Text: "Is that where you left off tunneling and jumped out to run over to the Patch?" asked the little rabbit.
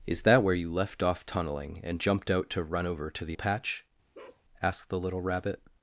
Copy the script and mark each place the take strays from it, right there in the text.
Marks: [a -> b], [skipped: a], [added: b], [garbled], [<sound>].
"Is that where you left off tunneling and jumped out to run over to the Patch?" [bark] asked the little rabbit.